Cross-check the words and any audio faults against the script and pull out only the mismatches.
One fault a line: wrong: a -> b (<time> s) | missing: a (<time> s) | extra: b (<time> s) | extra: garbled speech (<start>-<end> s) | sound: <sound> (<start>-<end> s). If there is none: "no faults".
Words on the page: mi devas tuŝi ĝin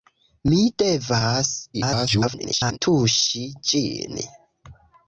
extra: garbled speech (1.7-2.8 s)